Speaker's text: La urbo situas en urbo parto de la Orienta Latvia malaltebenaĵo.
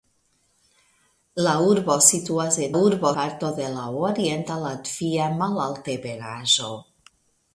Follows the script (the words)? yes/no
yes